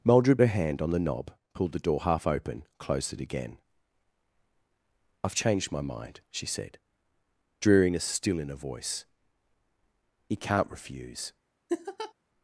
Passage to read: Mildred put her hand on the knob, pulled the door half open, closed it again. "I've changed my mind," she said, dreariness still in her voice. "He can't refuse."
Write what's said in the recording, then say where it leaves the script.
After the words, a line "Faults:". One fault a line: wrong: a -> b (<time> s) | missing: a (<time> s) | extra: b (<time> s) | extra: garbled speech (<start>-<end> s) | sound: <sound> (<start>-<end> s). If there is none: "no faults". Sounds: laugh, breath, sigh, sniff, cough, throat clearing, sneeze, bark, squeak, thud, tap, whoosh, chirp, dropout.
Mildred her hand on the knob, pulled the door half open, closed it again. "I've changed my mind," she said, dreariness still in her voice. "He can't refuse."
Faults:
missing: put (0.4 s)
sound: laugh (11.7-12.1 s)